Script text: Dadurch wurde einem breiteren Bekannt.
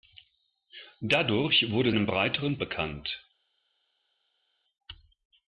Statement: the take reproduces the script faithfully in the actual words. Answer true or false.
true